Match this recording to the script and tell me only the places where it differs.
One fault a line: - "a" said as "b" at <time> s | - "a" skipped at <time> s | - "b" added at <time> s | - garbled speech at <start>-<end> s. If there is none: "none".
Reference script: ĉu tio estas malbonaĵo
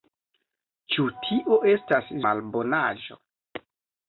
none